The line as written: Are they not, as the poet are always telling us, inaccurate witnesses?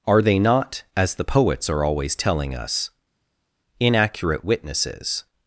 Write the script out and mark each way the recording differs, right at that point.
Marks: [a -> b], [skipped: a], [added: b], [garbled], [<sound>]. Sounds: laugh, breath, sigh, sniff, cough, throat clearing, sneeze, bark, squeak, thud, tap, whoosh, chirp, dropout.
Are they not, as the [poet -> poets] are always telling us, inaccurate witnesses?